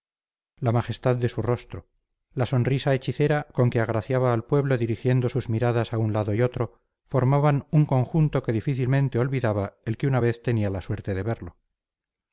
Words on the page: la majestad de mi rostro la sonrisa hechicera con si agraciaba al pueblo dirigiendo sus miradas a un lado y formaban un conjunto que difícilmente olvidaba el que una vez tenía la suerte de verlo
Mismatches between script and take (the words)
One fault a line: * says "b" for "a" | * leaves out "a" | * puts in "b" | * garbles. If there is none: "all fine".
* says "su" for "mi"
* says "que" for "si"
* puts in "otro"